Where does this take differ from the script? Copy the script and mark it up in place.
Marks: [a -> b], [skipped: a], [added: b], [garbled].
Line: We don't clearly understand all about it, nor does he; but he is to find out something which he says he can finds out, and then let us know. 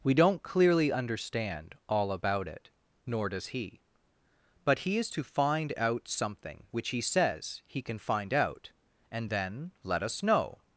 We don't clearly understand all about it, nor does he; but he is to find out something which he says he can [finds -> find] out, and then let us know.